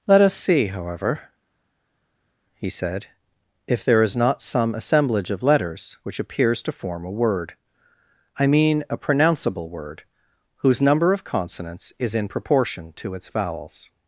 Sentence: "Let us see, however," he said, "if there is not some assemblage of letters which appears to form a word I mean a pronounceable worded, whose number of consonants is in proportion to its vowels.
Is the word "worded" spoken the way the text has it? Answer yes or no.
no